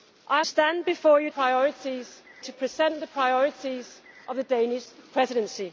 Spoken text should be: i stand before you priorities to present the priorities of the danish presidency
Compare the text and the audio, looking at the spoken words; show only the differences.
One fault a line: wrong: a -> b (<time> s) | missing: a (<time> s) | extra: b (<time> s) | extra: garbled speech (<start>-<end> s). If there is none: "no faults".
no faults